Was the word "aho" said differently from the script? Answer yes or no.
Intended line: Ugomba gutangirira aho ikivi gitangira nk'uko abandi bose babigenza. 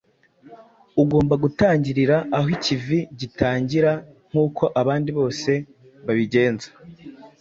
no